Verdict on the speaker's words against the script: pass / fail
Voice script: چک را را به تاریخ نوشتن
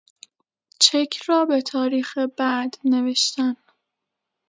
fail